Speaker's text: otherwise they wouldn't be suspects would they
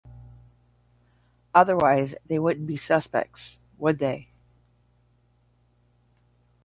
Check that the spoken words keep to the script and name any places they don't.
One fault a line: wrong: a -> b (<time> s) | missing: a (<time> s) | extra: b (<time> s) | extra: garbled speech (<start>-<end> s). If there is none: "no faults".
no faults